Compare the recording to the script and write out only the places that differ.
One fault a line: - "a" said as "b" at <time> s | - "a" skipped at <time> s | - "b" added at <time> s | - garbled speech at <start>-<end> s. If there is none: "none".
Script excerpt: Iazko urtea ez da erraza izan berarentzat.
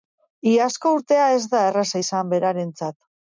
none